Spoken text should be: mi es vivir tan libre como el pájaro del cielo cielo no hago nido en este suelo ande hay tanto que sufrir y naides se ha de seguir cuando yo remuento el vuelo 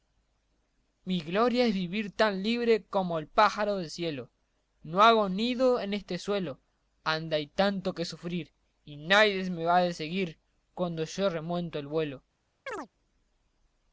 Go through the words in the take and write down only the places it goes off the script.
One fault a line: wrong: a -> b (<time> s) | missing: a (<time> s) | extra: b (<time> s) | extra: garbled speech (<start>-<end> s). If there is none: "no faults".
extra: gloria (1.2 s)
missing: cielo (4.3 s)
wrong: se -> me (9.5 s)